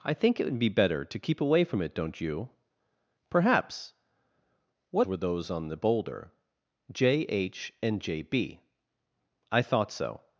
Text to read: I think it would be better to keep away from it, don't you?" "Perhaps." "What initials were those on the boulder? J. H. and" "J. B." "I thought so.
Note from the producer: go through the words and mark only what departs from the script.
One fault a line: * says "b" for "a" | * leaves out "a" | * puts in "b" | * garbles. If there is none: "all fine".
* leaves out "initials"